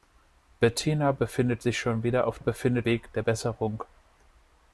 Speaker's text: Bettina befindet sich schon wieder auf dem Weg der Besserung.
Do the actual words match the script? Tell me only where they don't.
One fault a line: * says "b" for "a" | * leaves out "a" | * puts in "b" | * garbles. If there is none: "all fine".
* says "befindet" for "dem"